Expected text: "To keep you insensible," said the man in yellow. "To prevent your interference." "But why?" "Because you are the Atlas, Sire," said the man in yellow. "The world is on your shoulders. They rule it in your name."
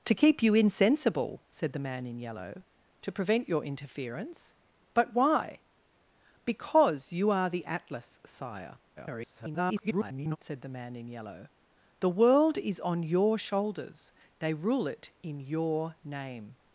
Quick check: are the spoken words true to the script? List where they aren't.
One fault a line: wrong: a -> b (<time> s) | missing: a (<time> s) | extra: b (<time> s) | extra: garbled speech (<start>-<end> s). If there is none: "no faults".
extra: garbled speech (9.0-10.4 s)